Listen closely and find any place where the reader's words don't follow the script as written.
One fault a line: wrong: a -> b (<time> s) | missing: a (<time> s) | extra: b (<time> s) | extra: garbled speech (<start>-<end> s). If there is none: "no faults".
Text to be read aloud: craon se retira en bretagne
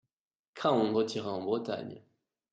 missing: se (0.9 s)